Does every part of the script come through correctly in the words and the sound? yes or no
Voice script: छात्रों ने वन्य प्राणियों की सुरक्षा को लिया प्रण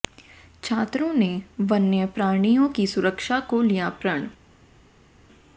yes